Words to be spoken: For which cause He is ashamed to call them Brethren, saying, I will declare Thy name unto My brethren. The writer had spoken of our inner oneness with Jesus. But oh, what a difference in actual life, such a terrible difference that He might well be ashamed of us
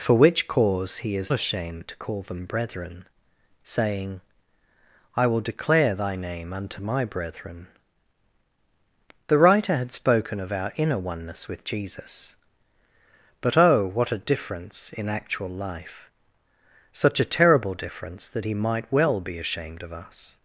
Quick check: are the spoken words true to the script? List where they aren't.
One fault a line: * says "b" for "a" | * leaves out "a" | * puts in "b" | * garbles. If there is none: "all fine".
all fine